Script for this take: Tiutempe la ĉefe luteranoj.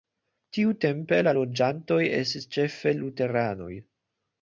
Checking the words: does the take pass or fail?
fail